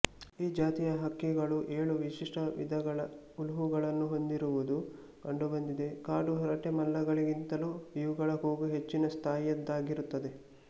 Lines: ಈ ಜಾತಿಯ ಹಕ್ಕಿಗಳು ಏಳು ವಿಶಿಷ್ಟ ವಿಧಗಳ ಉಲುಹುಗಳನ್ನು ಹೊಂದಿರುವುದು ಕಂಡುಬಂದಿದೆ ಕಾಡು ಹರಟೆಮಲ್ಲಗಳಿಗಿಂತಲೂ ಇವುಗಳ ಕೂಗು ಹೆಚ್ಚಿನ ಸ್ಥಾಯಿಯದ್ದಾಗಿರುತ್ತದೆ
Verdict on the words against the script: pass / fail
pass